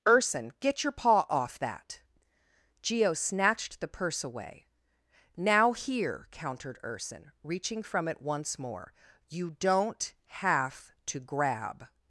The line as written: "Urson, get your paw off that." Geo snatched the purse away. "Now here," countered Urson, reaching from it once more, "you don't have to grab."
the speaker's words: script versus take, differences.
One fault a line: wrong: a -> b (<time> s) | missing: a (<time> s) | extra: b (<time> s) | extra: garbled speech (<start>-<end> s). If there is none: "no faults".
no faults